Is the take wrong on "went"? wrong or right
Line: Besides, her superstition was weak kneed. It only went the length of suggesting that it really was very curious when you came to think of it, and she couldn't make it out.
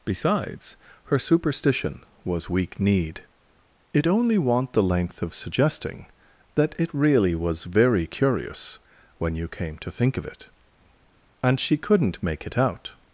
wrong